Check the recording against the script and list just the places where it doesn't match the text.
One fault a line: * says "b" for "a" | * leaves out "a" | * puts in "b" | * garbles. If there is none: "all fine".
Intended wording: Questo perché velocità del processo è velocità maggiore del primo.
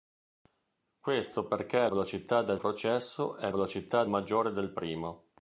all fine